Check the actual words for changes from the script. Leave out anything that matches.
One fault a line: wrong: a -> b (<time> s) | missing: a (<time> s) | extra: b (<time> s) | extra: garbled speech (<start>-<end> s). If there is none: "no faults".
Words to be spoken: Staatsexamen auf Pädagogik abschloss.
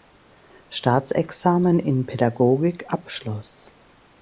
wrong: auf -> in (1.8 s)